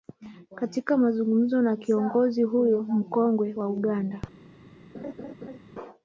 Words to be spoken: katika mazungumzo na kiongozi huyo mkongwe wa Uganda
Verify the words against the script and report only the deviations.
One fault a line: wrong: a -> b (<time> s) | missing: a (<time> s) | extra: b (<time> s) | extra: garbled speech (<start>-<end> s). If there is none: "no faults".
no faults